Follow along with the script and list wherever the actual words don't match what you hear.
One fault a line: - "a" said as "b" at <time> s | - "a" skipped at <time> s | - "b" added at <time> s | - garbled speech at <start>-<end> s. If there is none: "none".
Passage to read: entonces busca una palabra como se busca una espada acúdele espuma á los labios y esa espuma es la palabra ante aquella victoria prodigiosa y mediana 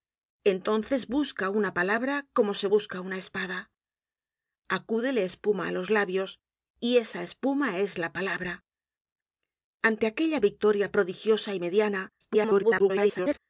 - garbled speech at 12.2-13.4 s